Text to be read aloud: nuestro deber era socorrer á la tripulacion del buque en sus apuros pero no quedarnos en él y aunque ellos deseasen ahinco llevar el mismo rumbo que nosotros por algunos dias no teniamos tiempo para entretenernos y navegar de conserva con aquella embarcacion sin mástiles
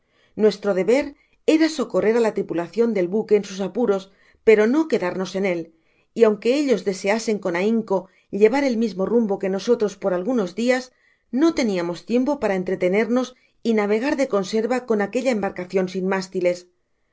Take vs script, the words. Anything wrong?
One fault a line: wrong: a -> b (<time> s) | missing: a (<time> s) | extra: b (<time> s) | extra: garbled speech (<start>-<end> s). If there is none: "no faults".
extra: con (7.4 s)